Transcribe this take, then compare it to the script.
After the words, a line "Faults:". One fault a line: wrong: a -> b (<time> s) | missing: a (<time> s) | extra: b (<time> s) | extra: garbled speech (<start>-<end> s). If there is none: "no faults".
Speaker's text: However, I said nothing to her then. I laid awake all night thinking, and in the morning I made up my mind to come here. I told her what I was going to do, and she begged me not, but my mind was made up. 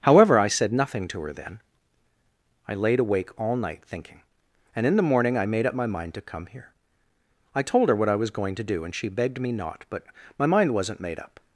However, I said nothing to her then. I laid awake all night thinking, and in the morning I made up my mind to come here. I told her what I was going to do, and she begged me not, but my mind wasn't made up.
Faults:
wrong: was -> wasn't (10.7 s)